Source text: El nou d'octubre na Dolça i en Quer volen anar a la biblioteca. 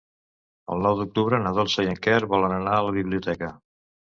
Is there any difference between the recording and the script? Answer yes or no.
no